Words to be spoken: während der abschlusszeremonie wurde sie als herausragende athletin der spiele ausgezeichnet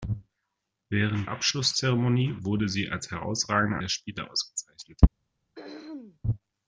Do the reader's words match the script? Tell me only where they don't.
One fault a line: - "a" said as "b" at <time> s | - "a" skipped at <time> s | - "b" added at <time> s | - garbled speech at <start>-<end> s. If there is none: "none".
- "der" skipped at 1.3 s
- "athletin" skipped at 3.8 s